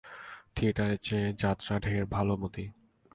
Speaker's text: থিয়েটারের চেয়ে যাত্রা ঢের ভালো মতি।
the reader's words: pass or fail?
pass